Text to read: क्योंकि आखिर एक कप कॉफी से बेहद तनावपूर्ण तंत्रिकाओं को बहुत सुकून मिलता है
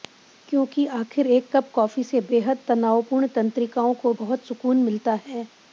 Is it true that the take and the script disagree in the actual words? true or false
false